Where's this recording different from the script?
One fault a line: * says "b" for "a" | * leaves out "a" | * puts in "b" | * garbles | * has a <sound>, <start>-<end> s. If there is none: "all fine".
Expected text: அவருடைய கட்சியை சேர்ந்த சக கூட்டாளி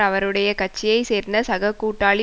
all fine